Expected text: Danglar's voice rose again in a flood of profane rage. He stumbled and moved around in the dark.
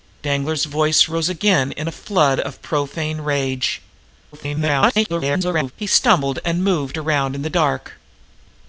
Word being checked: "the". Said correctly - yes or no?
yes